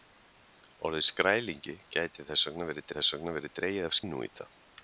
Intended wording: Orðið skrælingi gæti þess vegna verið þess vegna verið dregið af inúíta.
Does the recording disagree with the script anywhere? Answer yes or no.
no